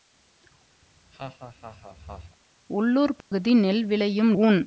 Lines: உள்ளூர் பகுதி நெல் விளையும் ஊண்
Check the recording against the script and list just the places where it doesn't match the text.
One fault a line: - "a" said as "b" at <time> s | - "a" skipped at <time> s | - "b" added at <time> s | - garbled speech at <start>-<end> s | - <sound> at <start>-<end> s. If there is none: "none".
- laugh at 0.8-2.4 s
- dropout at 3.2-3.3 s